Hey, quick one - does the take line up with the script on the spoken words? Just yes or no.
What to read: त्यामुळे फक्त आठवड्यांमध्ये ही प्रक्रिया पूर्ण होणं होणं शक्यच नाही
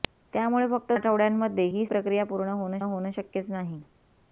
yes